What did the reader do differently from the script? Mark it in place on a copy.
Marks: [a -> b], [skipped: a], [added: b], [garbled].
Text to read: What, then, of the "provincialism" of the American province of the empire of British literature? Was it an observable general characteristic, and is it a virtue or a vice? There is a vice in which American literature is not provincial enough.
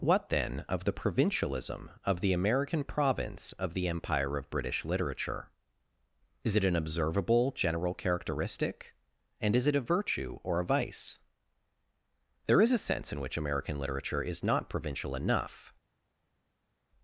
What, then, of the "provincialism" of the American province of the empire of British literature? [Was -> Is] it an observable general characteristic, and is it a virtue or a vice? There is a [vice -> sense] in which American literature is not provincial enough.